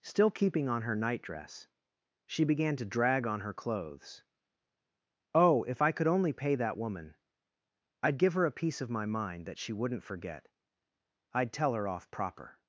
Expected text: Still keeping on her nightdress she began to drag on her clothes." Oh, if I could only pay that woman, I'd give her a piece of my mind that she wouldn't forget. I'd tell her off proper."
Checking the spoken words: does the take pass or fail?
pass